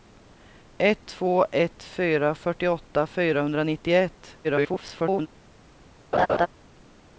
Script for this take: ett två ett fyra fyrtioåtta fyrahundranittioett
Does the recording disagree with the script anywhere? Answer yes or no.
yes